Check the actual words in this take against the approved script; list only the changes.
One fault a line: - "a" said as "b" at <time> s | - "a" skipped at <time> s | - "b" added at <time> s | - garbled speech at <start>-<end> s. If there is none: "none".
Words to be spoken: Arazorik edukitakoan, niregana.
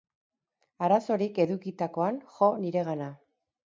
- "jo" added at 2.4 s